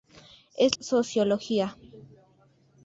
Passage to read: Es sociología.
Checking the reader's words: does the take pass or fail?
pass